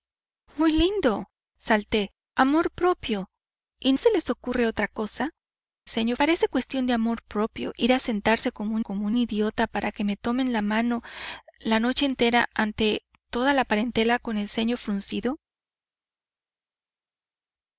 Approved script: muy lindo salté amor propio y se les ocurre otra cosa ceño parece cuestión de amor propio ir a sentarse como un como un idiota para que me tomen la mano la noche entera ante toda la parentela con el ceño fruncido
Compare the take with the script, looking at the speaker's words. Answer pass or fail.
pass